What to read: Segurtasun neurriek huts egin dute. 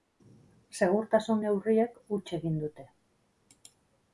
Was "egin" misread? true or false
false